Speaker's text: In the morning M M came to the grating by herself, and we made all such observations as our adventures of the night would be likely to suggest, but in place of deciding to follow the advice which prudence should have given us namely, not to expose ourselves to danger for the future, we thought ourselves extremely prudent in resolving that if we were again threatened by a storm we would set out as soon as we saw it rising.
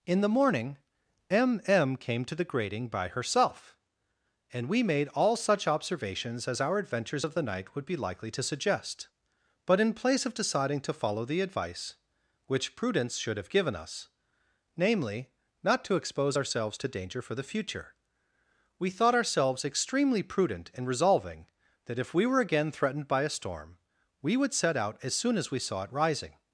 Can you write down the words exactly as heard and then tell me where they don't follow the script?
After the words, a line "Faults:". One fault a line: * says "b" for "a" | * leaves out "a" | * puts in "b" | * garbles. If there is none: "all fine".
In the morning M M came to the grating by herself, and we made all such observations as our adventures of the night would be likely to suggest, but in place of deciding to follow the advice which prudence should have given us namely, not to expose ourselves to danger for the future, we thought ourselves extremely prudent in resolving that if we were again threatened by a storm we would set out as soon as we saw it rising.
Faults:
all fine